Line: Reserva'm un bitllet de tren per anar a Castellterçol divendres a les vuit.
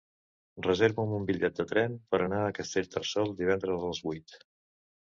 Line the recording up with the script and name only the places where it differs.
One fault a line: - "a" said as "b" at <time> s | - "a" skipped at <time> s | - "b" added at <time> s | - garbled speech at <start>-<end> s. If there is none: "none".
none